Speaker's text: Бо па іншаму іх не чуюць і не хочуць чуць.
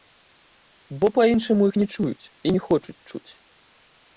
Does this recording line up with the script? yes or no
yes